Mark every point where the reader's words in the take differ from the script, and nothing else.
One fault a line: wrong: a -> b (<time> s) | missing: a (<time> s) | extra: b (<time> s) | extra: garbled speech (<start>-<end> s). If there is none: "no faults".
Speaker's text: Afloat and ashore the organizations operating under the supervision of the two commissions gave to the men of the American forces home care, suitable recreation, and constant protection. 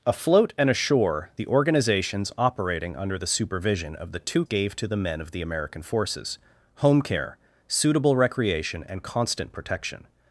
missing: commissions (4.4 s)